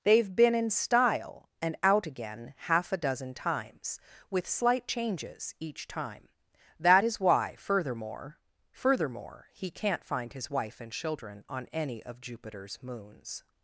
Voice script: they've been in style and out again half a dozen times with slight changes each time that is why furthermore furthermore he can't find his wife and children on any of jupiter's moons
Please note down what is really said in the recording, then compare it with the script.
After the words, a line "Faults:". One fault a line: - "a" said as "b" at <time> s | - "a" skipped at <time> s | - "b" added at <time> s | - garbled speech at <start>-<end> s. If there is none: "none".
they've been in style and out again half a dozen times with slight changes each time that is why furthermore furthermore he can't find his wife and children on any of jupiter's moons
Faults:
none